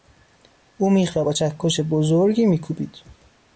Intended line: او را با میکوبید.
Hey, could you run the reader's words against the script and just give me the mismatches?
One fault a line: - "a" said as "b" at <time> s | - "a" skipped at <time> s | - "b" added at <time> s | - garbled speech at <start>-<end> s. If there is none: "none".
- "میخ" added at 0.9 s
- "چکش بزرگی" added at 1.3 s